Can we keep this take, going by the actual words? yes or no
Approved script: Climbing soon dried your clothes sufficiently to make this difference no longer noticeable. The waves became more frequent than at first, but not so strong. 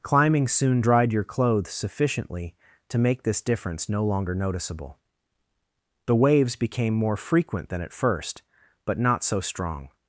yes